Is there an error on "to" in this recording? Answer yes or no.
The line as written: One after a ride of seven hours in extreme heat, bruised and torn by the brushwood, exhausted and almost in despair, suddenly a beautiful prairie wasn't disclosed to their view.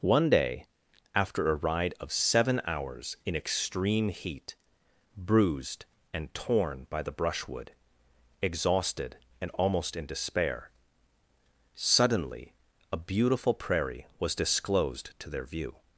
no